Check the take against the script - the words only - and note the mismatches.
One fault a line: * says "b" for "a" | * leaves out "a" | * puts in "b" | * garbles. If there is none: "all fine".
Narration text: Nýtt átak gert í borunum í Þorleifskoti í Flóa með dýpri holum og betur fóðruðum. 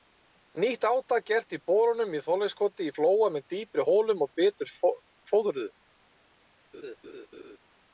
all fine